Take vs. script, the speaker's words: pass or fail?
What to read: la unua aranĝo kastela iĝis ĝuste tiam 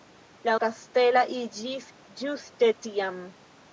fail